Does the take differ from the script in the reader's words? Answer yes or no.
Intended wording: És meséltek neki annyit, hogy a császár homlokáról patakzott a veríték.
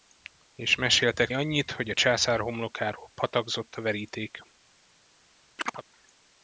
yes